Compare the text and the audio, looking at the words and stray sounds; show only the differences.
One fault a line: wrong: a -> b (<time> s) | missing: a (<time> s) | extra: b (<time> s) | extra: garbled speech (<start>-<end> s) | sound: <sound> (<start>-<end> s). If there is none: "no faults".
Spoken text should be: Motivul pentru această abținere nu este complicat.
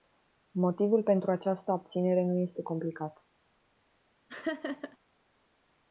sound: laugh (4.3-5.0 s)